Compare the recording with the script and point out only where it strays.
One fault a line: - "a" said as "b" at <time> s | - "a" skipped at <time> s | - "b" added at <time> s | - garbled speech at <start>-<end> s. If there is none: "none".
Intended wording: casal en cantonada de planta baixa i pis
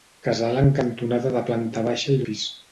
none